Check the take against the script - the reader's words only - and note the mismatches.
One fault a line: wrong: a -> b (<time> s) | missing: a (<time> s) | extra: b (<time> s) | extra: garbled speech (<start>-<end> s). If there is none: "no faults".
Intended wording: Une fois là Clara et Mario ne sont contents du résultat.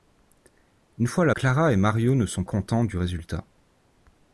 no faults